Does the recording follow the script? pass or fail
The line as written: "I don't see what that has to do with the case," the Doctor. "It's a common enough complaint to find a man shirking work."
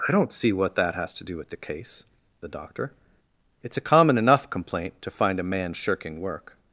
pass